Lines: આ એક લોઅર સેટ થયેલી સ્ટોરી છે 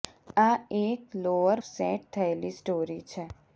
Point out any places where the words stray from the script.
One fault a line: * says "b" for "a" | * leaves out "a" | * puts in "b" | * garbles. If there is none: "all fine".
all fine